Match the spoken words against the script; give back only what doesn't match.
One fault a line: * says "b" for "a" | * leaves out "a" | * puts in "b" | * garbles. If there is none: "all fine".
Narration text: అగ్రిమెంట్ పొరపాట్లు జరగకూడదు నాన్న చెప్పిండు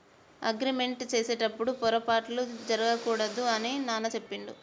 * puts in "చేసేటప్పుడు"
* puts in "అని"